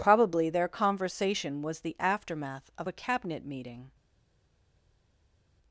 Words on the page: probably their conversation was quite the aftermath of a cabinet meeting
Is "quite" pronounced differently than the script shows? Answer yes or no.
yes